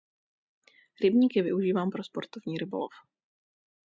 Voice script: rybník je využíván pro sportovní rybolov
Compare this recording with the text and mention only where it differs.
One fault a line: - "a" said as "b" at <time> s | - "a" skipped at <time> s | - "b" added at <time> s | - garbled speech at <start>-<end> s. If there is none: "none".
none